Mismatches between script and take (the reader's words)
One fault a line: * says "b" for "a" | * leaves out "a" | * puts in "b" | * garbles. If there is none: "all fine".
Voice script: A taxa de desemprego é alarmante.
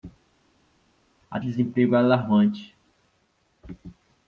* leaves out "taxa"